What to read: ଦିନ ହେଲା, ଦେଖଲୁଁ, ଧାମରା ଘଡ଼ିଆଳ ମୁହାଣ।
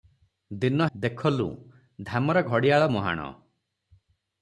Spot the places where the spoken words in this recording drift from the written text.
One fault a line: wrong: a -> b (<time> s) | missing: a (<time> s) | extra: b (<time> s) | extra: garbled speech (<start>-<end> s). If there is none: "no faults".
missing: ହେଲା (0.9 s)